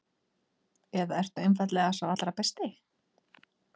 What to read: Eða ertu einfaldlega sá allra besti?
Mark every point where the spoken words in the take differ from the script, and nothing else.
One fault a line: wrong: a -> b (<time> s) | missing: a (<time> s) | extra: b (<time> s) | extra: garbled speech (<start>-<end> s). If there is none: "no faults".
no faults